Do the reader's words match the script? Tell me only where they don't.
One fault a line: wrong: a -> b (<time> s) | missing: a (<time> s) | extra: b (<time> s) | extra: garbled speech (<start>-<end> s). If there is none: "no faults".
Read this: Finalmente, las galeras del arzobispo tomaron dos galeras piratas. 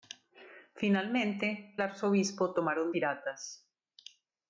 missing: las galeras del (1.8 s)
missing: dos galeras (2.9 s)